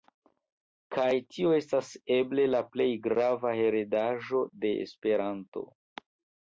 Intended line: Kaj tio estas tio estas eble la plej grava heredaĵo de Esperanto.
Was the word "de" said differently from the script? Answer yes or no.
no